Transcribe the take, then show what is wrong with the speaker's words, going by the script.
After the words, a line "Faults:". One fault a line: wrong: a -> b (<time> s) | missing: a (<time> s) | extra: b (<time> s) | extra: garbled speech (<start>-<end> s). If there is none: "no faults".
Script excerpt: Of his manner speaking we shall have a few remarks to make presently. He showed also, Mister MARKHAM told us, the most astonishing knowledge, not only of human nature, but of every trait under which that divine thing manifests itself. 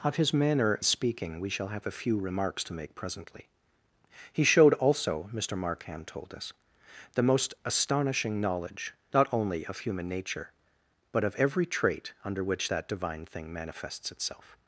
Of his manner speaking we shall have a few remarks to make presently. He showed also, Mister MARKHAM told us, the most astonishing knowledge, not only of human nature, but of every trait under which that divine thing manifests itself.
Faults:
no faults